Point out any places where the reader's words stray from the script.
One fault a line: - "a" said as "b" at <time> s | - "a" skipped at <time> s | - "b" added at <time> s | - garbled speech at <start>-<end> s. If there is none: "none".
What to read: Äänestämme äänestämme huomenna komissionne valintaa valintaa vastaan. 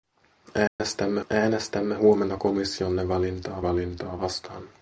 none